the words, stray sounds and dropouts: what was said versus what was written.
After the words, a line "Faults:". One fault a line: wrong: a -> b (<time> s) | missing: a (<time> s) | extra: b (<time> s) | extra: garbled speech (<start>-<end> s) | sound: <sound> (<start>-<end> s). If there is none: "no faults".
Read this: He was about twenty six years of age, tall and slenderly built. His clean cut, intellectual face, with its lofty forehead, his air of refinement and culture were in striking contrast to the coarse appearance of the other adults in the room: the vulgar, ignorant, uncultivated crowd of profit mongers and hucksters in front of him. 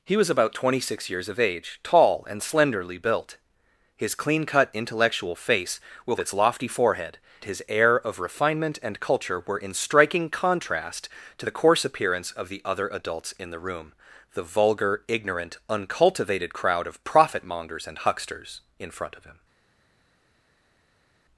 He was about twenty six years of age, tall and slenderly built. His clean cut, intellectual face, with its lofty forehead, his air of refinement and culture were in striking contrast to the coarse appearance of the other adults in the room: the vulgar, ignorant, uncultivated crowd of profit mongers and hucksters in front of him.
Faults:
no faults